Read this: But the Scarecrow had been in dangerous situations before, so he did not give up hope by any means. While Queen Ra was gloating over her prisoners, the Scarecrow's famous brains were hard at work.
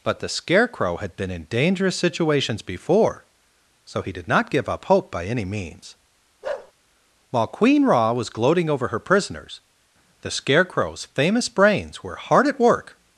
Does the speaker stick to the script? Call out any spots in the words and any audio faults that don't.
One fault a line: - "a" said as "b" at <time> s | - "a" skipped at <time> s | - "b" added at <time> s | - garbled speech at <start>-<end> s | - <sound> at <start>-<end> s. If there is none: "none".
- bark at 6.4-6.7 s